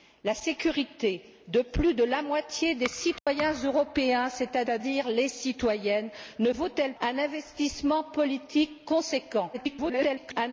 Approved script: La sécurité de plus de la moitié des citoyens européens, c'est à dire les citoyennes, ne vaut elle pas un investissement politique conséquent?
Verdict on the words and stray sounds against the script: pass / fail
fail